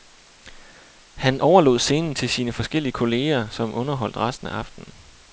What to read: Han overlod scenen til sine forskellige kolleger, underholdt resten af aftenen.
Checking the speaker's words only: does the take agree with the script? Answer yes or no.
no